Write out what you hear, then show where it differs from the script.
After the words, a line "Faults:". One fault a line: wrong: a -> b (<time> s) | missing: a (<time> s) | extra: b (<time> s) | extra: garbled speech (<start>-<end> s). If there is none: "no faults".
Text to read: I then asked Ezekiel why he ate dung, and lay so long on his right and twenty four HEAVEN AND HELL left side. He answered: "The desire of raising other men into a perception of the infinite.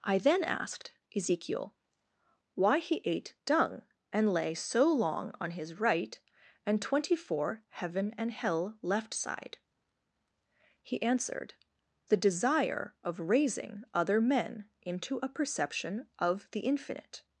I then asked Ezekiel why he ate dung, and lay so long on his right and twenty four HEAVEN AND HELL left side. He answered: "The desire of raising other men into a perception of the infinite.
Faults:
no faults